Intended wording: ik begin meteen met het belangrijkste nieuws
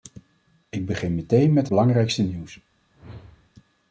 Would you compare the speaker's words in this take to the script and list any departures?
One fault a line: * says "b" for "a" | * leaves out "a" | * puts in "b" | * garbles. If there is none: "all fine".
* leaves out "het"